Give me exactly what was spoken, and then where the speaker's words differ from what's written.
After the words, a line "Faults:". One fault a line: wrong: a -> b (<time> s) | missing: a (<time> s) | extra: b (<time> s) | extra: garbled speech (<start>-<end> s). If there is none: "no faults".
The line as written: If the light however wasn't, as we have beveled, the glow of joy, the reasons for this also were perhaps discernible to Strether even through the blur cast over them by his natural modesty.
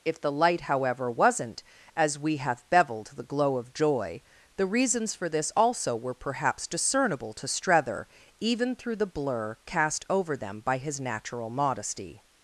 If the light however wasn't, as we have beveled, the glow of joy, the reasons for this also were perhaps discernible to Strether even through the blur cast over them by his natural modesty.
Faults:
no faults